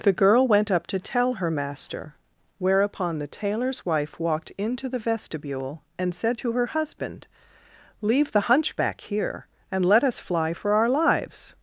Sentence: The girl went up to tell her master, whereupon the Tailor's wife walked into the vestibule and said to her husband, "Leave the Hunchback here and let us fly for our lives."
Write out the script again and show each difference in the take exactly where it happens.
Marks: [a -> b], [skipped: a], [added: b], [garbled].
The girl went up to tell her master, whereupon the Tailor's wife walked into the vestibule and said to her husband, "Leave the Hunchback here and let us fly for our lives."